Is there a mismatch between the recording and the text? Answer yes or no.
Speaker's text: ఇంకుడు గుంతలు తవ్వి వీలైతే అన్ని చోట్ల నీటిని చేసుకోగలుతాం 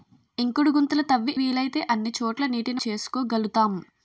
no